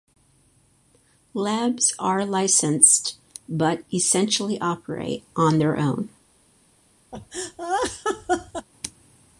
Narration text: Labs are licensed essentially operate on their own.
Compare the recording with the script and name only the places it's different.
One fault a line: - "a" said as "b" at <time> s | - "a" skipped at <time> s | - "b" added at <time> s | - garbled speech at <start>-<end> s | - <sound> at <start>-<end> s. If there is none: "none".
- "but" added at 3.5 s
- laugh at 7.1-8.7 s